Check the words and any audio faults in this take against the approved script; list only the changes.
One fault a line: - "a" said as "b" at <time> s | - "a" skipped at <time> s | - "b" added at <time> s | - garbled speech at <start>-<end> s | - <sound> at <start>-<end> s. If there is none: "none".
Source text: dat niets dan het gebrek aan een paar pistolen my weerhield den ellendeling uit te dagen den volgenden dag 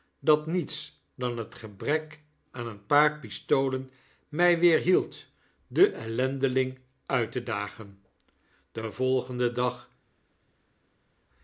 none